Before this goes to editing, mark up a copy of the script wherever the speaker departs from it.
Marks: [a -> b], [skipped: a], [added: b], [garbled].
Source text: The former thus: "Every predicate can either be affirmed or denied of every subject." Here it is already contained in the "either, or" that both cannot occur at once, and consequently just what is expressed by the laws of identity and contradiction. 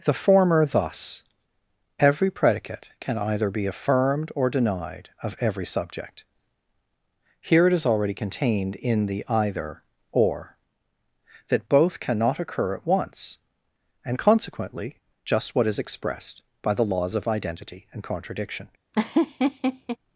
The former thus: "Every predicate can either be affirmed or denied of every subject." Here it is already contained in the "either, or" that both cannot occur at once, and consequently just what is expressed by the laws of identity and contradiction.